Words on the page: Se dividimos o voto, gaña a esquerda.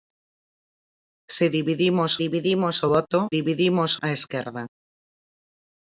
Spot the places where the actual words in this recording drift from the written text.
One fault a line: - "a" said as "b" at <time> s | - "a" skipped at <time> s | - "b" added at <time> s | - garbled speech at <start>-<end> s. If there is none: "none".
- "dividimos" added at 2.2 s
- "gaña" said as "dividimos" at 3.3 s